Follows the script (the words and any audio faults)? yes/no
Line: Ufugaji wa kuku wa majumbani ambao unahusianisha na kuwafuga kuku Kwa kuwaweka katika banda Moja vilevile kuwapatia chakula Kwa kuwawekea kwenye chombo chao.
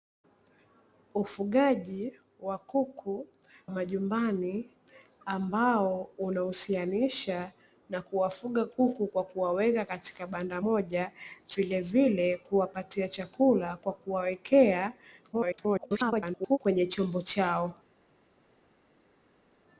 no